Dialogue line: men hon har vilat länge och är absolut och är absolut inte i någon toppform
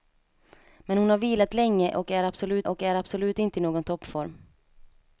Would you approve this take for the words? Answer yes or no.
yes